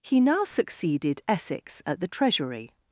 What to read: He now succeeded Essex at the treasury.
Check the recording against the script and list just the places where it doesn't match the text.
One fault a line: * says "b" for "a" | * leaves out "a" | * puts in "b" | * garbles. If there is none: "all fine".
all fine